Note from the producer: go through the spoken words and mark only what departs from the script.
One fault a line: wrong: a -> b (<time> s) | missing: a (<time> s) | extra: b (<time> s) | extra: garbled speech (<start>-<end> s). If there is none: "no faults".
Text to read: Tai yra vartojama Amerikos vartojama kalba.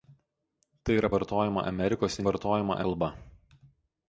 no faults